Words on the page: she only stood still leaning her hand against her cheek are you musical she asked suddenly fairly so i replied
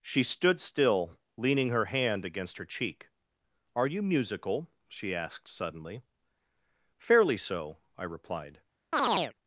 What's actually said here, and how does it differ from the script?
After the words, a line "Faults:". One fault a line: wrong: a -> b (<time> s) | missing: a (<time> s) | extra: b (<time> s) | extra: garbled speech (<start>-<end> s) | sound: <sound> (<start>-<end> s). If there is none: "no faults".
she stood still leaning her hand against her cheek are you musical she asked suddenly fairly so i replied
Faults:
missing: only (0.2 s)
sound: chirp (8.9-9.3 s)